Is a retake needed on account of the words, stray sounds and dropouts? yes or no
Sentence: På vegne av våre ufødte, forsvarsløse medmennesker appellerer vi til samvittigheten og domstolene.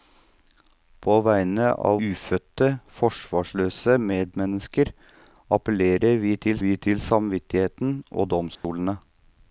yes